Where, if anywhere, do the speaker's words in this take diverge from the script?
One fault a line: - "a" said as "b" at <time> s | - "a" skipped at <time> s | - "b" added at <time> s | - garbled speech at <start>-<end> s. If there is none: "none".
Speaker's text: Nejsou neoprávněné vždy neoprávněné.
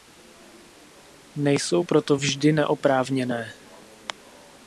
- "neoprávněné" said as "proto" at 1.8 s